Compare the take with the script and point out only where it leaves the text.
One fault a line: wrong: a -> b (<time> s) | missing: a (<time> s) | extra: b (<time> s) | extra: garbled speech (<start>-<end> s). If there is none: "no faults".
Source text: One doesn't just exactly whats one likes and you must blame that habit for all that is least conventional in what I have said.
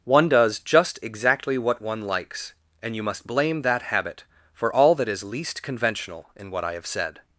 wrong: doesn't -> does (0.3 s)
wrong: whats -> what (1.6 s)